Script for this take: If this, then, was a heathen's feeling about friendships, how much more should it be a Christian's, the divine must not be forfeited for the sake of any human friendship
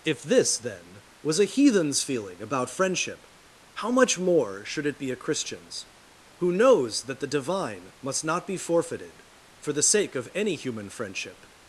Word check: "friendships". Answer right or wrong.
wrong